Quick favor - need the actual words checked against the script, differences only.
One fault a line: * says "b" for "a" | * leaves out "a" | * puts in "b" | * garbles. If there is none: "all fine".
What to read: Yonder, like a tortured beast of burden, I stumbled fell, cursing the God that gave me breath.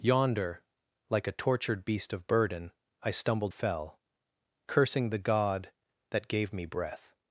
all fine